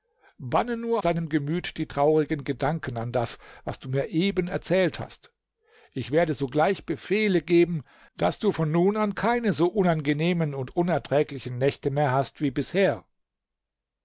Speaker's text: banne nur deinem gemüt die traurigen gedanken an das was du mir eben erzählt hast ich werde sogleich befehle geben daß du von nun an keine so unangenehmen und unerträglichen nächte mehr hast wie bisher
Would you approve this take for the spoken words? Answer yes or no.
yes